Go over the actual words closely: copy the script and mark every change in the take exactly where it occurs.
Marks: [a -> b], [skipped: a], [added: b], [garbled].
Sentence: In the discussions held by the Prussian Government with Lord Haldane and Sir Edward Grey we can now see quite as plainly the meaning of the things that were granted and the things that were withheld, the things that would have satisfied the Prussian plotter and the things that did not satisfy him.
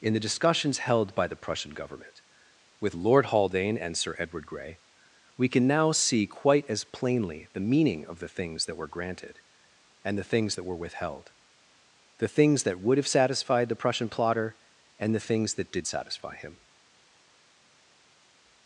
In the discussions held by the Prussian Government with Lord Haldane and Sir Edward Grey we can now see quite as plainly the meaning of the things that were granted and the things that were withheld, the things that would have satisfied the Prussian plotter and the things that did [skipped: not] satisfy him.